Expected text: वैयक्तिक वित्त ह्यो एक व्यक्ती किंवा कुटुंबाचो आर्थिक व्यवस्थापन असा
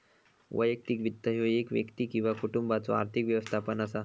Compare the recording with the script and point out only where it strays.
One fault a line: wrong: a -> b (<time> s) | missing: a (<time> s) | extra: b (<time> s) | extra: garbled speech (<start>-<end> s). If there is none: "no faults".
no faults